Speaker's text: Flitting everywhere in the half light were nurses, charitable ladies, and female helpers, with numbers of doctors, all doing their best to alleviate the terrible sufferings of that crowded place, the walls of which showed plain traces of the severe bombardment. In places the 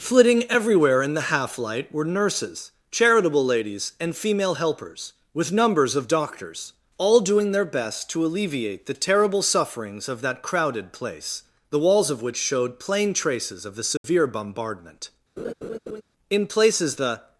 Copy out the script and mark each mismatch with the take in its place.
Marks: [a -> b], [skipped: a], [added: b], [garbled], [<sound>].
Flitting everywhere in the half light were nurses, charitable ladies, and female helpers, with numbers of doctors, all doing their best to alleviate the terrible sufferings of that crowded place, the walls of which showed plain traces of the severe [dropout] bombardment. [laugh] In places the